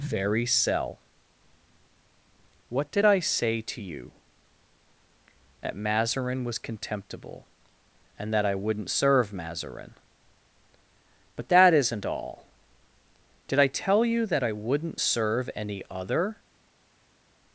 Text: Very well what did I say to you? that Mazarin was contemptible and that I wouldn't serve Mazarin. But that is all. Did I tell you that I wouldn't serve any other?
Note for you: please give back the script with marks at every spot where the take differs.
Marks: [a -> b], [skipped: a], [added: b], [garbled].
Very [well -> cell] what did I say to you? that Mazarin was contemptible and that I wouldn't serve Mazarin. But that [is -> isn't] all. Did I tell you that I wouldn't serve any other?